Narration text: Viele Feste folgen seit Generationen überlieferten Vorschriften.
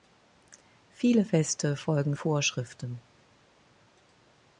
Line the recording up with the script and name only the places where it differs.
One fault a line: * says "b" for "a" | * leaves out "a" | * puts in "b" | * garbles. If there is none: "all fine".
* leaves out "seit Generationen überlieferten"